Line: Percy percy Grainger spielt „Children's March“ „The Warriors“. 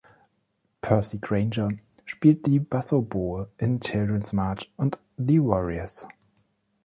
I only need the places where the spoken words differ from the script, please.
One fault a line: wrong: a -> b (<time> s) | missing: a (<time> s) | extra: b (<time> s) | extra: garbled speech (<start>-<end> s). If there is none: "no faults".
missing: percy (1.2 s)
extra: die Bassoboe in (2.5 s)
extra: und (4.7 s)